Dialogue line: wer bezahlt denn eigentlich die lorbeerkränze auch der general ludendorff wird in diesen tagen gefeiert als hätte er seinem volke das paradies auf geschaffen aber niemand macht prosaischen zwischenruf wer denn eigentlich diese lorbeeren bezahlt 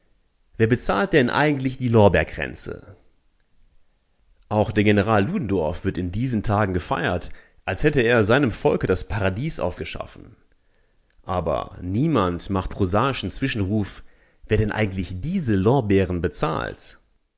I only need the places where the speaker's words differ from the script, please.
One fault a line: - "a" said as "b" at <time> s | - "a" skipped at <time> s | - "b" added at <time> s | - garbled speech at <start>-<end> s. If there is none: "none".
none